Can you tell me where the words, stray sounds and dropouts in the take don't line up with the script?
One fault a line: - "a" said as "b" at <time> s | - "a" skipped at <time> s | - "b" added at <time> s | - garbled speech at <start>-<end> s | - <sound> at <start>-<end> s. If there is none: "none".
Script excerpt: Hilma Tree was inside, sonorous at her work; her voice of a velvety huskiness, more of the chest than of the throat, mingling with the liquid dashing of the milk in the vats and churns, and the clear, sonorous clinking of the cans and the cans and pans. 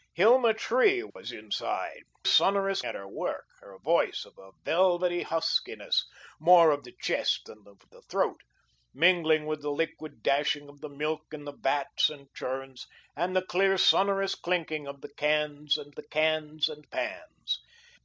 - dropout at 1.1-1.2 s